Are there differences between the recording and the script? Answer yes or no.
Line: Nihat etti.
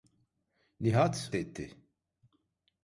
no